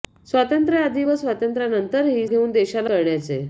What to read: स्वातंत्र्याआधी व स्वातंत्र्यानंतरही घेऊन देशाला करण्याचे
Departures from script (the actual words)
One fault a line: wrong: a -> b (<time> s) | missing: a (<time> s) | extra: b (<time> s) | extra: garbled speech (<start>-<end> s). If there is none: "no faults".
no faults